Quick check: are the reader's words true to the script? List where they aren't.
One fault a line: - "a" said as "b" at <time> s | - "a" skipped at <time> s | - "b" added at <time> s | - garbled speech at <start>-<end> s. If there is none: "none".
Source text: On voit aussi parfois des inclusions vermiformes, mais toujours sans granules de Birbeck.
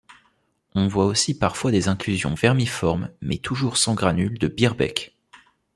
none